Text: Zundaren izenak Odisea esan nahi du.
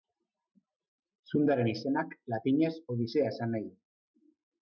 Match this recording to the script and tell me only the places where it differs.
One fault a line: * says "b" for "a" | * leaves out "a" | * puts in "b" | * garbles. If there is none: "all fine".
* puts in "latinez"